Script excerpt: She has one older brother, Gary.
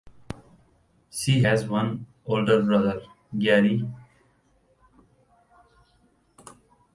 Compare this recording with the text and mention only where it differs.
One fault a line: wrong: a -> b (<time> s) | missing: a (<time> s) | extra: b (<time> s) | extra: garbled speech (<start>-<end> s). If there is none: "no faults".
no faults